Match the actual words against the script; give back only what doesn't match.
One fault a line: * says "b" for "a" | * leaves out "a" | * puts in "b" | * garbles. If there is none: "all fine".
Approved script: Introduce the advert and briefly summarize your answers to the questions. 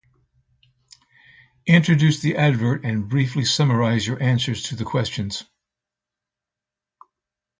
all fine